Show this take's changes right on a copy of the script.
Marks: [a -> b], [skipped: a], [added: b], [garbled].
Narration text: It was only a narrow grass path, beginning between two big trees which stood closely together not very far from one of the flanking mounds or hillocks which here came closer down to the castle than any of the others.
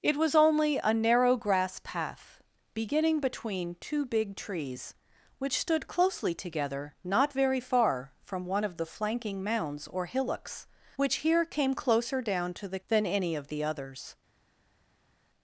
It was only a narrow grass path, beginning between two big trees which stood closely together not very far from one of the flanking mounds or hillocks which here came closer down to the [skipped: castle] than any of the others.